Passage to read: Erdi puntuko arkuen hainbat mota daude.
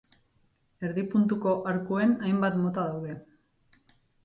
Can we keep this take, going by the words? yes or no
yes